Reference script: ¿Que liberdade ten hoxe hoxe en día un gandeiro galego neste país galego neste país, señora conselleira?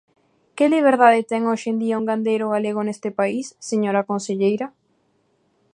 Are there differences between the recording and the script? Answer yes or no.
yes